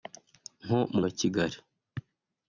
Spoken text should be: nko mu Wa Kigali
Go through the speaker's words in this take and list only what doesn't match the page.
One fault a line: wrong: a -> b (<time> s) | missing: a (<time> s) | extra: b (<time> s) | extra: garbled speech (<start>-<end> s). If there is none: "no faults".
no faults